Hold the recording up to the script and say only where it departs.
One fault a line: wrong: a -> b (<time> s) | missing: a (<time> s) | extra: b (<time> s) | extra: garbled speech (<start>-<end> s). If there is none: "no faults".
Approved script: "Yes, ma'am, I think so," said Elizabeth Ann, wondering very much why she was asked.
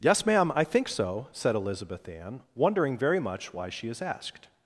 wrong: was -> is (3.9 s)